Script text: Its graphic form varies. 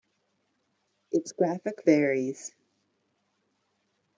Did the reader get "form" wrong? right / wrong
wrong